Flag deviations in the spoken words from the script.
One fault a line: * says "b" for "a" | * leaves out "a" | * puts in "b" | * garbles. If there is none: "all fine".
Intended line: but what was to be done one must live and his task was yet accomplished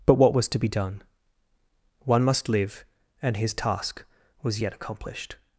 all fine